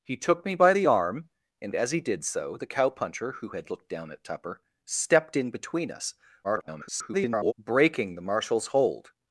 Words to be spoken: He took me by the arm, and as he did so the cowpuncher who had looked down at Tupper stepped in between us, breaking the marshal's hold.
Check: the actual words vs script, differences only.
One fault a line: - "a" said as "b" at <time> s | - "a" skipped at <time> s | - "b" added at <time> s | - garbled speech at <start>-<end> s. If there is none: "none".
- garbled speech at 6.4-7.5 s